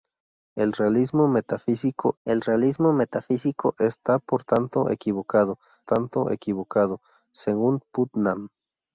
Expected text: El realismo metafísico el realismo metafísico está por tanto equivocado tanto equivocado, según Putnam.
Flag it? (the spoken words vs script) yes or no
no